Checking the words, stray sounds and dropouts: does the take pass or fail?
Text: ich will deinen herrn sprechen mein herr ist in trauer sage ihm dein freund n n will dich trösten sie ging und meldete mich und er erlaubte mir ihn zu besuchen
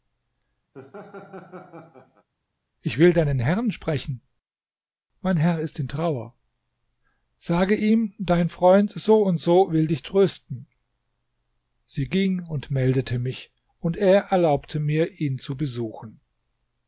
fail